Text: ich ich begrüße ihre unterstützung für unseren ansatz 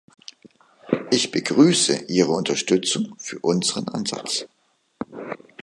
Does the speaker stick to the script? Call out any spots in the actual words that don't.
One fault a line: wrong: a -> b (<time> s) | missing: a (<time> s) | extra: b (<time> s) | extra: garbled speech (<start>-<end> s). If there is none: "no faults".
missing: ich (1.3 s)